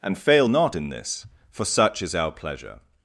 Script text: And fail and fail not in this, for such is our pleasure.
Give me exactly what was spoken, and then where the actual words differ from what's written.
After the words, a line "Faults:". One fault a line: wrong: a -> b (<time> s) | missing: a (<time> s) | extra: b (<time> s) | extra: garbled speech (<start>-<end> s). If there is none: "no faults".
And fail not in this, for such is our pleasure.
Faults:
missing: and fail (0.5 s)